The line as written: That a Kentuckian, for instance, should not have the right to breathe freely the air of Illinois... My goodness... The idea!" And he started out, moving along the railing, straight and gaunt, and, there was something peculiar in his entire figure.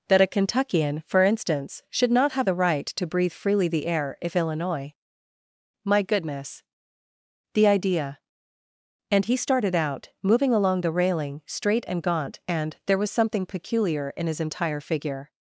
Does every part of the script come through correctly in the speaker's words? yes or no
no